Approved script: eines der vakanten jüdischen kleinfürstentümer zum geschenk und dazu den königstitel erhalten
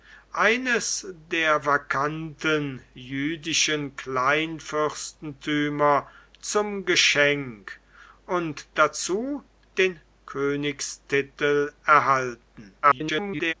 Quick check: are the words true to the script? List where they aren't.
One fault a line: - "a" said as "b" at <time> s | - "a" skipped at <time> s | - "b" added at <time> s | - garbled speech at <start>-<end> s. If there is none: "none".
- garbled speech at 12.8-13.5 s